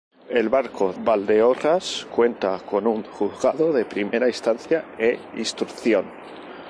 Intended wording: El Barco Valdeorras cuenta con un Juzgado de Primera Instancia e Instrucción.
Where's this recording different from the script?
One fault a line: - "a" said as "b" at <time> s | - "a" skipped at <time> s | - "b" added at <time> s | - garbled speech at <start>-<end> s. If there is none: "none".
none